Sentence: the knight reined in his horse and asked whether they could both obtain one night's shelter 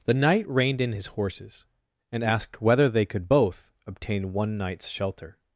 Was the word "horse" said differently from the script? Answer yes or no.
yes